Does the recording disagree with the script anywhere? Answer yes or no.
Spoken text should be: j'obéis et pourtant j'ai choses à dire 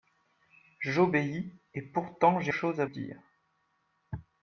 no